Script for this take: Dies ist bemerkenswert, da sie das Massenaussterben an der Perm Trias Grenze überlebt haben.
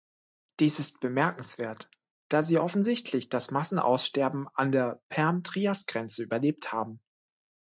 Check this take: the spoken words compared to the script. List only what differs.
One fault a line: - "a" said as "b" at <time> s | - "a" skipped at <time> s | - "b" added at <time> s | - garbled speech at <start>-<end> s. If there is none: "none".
- "offensichtlich" added at 2.6 s